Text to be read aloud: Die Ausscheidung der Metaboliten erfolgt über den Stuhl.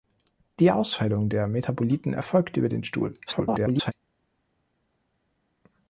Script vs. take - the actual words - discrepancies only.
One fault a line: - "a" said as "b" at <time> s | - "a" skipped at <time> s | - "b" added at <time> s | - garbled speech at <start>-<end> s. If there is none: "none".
- garbled speech at 3.3-3.9 s